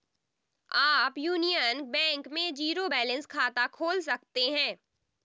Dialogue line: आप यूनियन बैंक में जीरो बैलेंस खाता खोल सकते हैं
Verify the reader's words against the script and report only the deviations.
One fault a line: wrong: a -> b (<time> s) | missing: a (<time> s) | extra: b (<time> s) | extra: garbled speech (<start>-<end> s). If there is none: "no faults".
no faults